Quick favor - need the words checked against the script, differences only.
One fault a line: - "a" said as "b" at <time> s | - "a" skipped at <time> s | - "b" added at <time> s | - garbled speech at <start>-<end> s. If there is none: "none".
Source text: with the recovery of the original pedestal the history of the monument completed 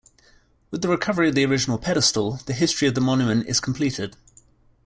- "is" added at 3.5 s